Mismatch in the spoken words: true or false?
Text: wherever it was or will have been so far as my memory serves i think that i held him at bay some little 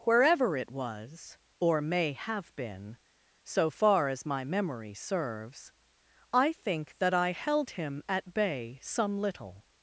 true